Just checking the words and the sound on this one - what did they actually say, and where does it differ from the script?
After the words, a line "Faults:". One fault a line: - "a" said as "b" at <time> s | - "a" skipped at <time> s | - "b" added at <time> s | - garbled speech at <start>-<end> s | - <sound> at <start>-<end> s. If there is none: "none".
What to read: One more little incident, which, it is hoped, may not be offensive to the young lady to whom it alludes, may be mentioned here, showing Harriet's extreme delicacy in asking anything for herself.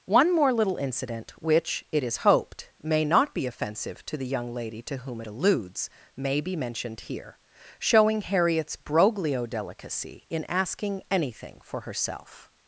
One more little incident, which, it is hoped, may not be offensive to the young lady to whom it alludes, may be mentioned here, showing Harriet's broglio delicacy in asking anything for herself.
Faults:
- "extreme" said as "broglio" at 8.8 s